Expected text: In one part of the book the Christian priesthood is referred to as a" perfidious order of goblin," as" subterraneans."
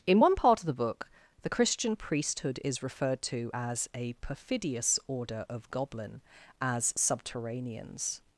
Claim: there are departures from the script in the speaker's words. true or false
false